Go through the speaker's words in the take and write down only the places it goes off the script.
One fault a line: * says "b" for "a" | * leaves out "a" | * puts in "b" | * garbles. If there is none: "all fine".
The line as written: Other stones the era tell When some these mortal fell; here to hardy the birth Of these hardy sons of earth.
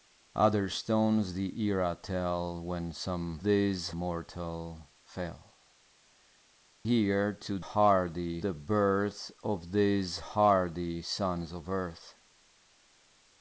all fine